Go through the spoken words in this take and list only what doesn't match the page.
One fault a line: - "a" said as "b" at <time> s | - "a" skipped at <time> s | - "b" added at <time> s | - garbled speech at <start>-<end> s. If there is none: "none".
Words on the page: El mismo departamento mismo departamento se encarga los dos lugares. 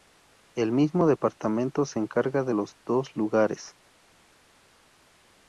- "mismo departamento" skipped at 1.9 s
- "de" added at 2.4 s